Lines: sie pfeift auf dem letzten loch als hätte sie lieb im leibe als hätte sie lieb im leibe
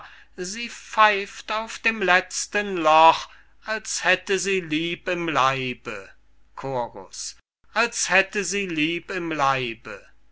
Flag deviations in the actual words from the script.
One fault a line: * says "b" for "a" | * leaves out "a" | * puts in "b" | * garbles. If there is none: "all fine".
all fine